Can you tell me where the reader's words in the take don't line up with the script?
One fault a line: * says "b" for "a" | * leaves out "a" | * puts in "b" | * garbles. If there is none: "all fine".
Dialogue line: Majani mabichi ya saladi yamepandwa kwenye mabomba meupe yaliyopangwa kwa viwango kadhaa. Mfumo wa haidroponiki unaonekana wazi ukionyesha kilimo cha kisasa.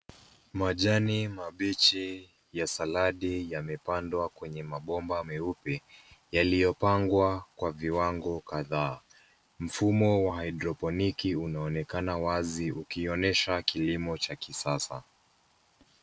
all fine